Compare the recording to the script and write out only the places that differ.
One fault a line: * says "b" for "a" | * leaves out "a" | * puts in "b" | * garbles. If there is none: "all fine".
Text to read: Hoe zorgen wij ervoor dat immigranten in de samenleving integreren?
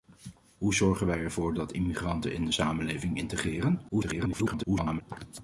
* garbles